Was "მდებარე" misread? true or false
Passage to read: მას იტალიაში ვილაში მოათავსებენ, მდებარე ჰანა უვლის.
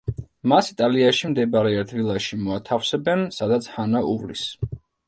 true